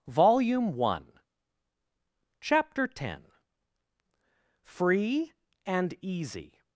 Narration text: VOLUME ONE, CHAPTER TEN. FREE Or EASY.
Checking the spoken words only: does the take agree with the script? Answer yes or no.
no